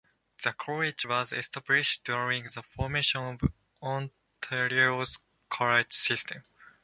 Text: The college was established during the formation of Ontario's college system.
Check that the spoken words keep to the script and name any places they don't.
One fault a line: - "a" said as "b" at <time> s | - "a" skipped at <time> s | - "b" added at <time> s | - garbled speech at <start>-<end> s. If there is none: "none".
none